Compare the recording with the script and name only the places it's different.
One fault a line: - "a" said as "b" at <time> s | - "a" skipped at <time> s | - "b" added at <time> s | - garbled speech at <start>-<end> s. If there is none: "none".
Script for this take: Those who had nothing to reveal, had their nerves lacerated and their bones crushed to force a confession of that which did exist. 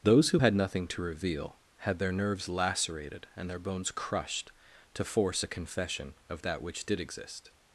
none